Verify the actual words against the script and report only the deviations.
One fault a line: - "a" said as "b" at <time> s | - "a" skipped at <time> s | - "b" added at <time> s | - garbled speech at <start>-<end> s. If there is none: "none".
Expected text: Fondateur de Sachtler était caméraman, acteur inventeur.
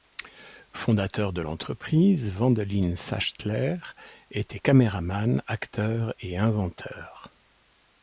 - "l'entreprise Wendelin" added at 1.4 s
- "et" added at 6.2 s